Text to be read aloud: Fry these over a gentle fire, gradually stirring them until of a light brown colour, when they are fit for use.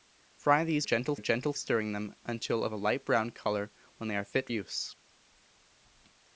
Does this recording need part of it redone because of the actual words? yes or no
yes